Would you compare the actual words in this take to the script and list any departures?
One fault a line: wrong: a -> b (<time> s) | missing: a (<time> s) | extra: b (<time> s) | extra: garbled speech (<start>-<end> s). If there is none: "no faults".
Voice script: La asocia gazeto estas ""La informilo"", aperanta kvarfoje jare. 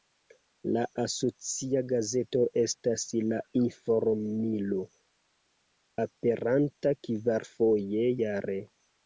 no faults